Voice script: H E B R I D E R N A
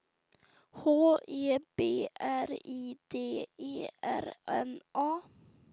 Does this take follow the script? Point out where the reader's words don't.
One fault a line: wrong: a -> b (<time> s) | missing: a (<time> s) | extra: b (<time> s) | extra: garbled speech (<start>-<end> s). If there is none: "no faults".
no faults